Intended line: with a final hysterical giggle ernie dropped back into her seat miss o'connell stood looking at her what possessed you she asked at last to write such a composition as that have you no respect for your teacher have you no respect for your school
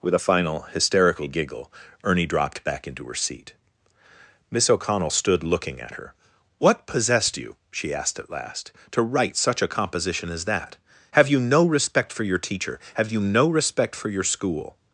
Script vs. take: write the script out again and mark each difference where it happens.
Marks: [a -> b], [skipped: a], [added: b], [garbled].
with a final hysterical giggle ernie dropped back into her seat miss o'connell stood looking at her what possessed you she asked at last to write such a composition as that have you no respect for your teacher have you no respect for your school